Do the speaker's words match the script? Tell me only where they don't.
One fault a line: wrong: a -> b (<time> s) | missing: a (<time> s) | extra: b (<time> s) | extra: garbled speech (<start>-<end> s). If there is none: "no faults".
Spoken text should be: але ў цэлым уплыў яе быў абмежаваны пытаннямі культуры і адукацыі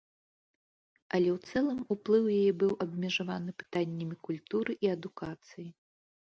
no faults